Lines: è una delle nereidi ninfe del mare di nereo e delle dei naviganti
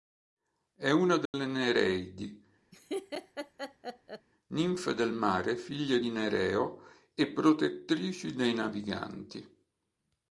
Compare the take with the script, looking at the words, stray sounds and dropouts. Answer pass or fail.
fail